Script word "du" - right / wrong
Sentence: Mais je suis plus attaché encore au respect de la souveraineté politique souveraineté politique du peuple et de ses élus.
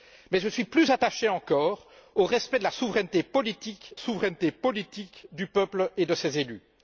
right